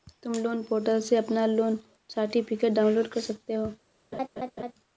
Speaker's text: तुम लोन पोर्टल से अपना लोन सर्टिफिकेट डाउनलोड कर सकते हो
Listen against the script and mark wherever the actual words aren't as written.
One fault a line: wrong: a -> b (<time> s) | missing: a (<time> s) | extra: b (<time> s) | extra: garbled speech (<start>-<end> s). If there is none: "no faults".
no faults